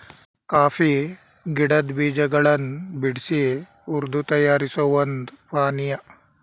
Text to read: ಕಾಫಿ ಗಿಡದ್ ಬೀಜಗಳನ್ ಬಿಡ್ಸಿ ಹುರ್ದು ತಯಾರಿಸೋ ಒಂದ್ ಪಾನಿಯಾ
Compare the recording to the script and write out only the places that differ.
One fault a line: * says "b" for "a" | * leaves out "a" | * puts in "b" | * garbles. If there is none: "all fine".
all fine